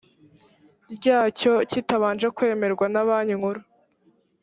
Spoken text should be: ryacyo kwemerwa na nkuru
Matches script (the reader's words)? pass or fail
fail